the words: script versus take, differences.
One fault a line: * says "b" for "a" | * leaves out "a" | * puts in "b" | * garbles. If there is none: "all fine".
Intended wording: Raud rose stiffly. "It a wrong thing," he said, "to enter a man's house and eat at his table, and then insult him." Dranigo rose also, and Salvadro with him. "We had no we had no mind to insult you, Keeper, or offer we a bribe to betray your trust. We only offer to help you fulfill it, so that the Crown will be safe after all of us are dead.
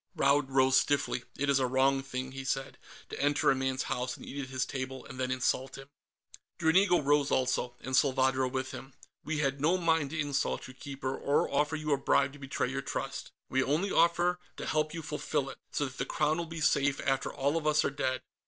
* puts in "is"
* leaves out "we had no"
* says "you" for "we"